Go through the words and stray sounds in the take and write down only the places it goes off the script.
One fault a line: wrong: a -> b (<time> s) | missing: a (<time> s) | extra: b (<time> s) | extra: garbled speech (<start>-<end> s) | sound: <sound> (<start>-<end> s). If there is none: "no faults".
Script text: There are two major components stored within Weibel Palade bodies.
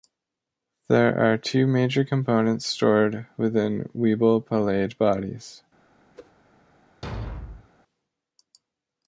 sound: whoosh (6.1-6.3 s)
sound: thud (7.0-7.7 s)